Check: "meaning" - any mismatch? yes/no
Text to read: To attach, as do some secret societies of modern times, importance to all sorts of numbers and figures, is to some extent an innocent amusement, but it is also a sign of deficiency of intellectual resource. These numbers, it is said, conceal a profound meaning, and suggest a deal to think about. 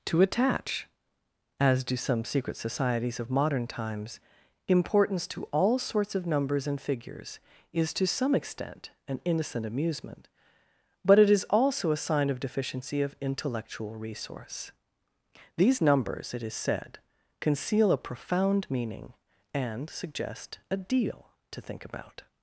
no